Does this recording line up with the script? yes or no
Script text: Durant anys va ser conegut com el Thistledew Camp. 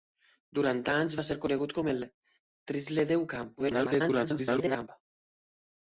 no